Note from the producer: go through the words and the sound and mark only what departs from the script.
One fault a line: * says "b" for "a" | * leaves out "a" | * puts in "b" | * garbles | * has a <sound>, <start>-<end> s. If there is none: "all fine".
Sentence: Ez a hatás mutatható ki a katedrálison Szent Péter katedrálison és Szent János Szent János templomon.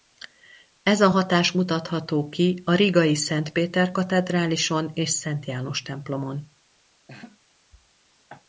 * says "rigai" for "katedrálison"
* leaves out "Szent János"
* has a laugh, 7.1-7.4 s